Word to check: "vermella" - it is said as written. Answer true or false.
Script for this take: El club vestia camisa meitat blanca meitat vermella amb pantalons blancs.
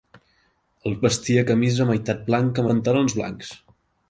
false